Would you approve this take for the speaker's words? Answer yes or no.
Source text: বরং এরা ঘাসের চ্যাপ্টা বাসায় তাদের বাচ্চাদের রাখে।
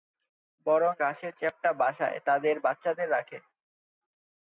no